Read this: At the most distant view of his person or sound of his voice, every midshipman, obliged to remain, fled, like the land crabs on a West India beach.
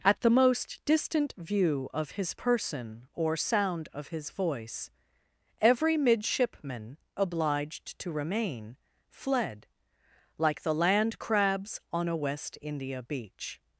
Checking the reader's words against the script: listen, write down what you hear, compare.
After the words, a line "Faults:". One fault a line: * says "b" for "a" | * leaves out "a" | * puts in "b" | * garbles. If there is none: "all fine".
At the most distant view of his person or sound of his voice, every midshipman, obliged to remain, fled, like the land crabs on a West India beach.
Faults:
all fine